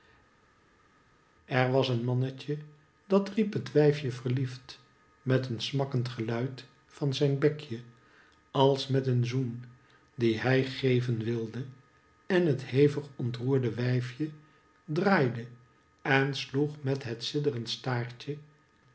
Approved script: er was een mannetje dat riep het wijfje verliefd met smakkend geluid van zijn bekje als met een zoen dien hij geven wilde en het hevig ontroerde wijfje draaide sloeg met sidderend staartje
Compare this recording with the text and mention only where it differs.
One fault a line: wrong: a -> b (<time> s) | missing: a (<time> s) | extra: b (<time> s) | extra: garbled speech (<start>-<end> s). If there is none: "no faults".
extra: een (5.5 s)
extra: en (16.0 s)
extra: het (17.0 s)